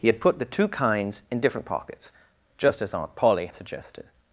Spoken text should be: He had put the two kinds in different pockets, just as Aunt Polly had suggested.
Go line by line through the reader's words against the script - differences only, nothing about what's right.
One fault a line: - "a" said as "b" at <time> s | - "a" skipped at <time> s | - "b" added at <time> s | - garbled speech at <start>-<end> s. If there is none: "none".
- "had" skipped at 3.5 s